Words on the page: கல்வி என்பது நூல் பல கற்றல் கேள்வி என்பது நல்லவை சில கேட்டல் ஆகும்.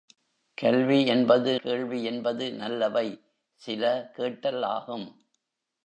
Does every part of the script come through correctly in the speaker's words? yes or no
no